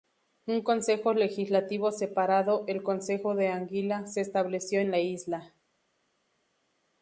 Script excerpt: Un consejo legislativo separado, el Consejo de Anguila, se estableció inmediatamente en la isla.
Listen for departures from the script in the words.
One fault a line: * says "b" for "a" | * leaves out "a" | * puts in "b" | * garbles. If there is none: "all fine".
* leaves out "inmediatamente"